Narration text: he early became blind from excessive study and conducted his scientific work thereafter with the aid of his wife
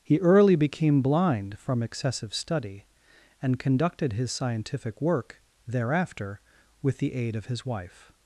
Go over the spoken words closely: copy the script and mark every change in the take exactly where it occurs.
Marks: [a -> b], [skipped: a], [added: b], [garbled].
he early became blind from excessive study and conducted his scientific work thereafter with the aid of his wife